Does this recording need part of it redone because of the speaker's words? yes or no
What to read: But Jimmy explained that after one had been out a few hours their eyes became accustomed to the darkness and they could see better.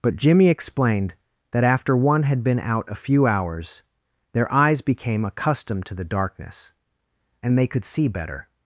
no